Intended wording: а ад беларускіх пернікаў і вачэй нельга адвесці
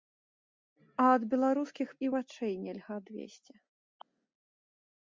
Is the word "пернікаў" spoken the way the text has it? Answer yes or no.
no